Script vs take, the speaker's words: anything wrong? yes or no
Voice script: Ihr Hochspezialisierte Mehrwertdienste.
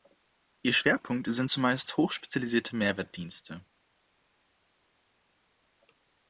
yes